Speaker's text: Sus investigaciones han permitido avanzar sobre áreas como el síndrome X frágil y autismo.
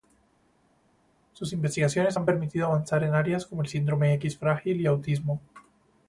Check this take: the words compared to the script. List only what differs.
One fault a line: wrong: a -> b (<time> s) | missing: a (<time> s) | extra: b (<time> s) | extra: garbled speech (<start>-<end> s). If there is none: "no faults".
wrong: sobre -> en (3.1 s)